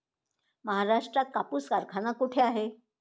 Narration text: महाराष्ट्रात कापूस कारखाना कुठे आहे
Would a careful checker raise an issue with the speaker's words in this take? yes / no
no